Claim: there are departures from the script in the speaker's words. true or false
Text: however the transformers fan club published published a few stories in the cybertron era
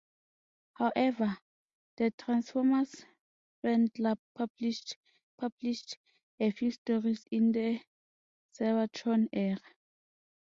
false